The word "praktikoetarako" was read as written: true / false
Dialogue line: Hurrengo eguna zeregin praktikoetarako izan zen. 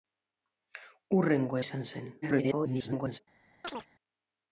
false